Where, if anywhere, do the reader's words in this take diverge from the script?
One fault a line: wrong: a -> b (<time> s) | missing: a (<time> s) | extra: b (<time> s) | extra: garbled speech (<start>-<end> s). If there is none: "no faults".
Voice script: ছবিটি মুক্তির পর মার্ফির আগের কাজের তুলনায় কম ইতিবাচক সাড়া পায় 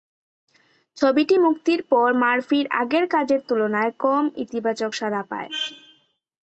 no faults